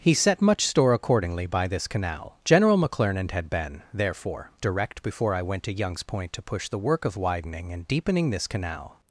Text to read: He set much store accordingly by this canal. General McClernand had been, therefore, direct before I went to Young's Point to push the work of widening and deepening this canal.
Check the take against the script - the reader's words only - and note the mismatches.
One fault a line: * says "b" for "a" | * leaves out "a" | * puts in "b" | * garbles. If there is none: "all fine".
all fine